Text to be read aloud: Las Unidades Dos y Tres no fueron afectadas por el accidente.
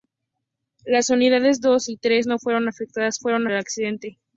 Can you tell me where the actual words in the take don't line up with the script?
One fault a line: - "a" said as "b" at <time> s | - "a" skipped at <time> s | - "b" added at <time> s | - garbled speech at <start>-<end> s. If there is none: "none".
- "por" said as "fueron" at 3.2 s